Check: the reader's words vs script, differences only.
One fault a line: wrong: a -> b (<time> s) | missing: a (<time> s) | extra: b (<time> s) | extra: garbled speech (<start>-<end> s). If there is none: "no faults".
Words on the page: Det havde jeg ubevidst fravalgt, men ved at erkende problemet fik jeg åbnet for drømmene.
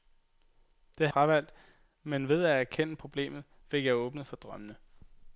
missing: havde jeg ubevidst (1.1 s)